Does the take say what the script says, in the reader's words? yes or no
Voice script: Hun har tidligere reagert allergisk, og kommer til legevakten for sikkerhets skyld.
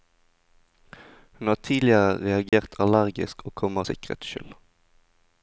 no